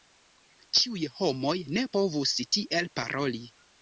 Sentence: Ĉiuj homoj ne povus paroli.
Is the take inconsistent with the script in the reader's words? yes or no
yes